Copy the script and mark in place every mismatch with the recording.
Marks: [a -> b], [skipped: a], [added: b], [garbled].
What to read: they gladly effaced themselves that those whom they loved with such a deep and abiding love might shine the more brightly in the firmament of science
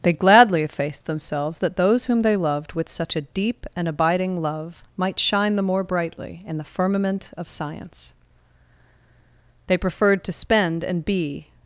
they gladly effaced themselves that those whom they loved with such a deep and abiding love might shine the more brightly in the firmament of science [added: they preferred to spend and be]